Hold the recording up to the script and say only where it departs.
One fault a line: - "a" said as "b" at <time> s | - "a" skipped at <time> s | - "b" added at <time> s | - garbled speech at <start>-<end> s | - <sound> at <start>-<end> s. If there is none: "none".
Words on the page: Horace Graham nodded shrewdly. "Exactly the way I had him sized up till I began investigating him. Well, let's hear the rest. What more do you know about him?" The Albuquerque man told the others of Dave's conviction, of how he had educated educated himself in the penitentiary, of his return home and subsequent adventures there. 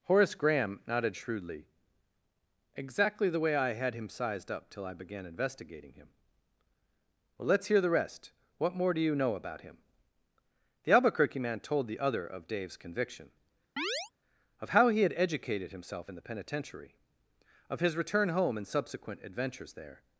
- "others" said as "other" at 12.0 s
- chirp at 13.8-14.1 s
- "educated" skipped at 15.7 s